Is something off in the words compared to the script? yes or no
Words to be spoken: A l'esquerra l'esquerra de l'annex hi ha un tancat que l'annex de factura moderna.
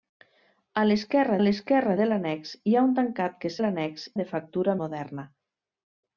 no